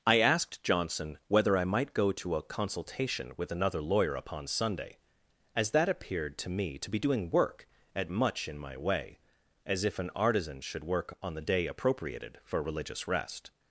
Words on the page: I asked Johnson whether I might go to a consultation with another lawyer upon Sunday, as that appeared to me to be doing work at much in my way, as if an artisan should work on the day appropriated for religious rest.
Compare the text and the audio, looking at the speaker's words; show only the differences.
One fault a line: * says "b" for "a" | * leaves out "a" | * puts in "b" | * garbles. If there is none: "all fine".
all fine